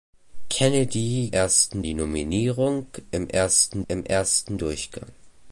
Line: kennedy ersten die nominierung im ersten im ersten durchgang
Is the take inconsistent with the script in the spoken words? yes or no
no